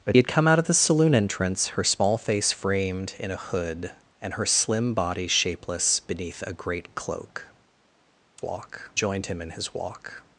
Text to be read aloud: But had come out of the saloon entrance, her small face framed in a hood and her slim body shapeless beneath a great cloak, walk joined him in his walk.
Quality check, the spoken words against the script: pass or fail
pass